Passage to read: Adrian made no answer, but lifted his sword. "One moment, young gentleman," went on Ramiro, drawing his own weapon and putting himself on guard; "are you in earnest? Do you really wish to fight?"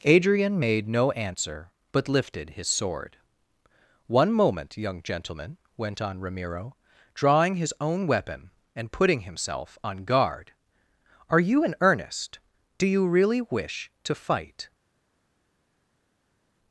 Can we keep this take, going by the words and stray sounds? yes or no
yes